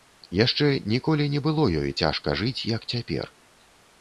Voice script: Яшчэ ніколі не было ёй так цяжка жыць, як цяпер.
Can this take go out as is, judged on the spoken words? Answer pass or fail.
fail